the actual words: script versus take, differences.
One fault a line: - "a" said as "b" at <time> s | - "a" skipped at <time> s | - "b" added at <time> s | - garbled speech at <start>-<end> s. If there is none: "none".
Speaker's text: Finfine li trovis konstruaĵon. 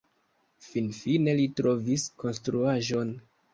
none